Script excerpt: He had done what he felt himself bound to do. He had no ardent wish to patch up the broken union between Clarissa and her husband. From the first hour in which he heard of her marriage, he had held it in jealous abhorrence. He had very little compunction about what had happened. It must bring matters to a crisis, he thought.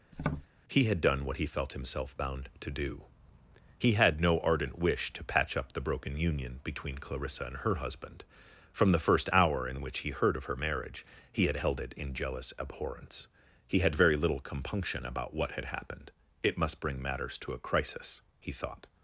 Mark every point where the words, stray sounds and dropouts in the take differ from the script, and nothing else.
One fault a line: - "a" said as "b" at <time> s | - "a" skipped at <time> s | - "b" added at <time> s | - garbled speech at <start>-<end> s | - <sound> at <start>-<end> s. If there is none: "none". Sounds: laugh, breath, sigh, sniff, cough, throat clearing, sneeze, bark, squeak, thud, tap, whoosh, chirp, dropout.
- tap at 0.1-0.5 s